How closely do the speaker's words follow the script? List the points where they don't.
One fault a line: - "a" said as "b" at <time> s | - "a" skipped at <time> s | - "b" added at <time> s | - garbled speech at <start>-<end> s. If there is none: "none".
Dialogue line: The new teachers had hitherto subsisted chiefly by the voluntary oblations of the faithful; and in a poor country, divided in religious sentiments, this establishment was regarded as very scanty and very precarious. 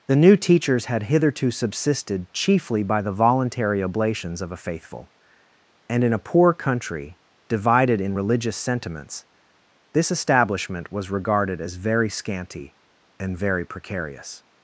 - "the" said as "a" at 4.5 s